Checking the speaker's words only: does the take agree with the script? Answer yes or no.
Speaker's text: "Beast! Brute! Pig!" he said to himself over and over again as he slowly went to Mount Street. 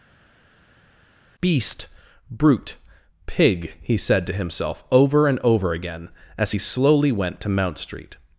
yes